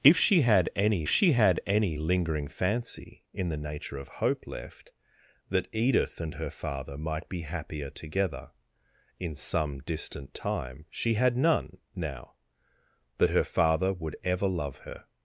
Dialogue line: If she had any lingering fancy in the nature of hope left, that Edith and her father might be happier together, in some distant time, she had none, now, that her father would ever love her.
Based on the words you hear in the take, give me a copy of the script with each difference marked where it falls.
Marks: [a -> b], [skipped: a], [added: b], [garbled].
If she had any [added: she had any] lingering fancy in the nature of hope left, that Edith and her father might be happier together, in some distant time, she had none, now, that her father would ever love her.